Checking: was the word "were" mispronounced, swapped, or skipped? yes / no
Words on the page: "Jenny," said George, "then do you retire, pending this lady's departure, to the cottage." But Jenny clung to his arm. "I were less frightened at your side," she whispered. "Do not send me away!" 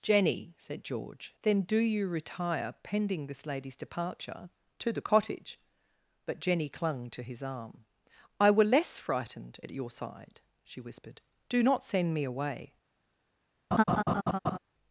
no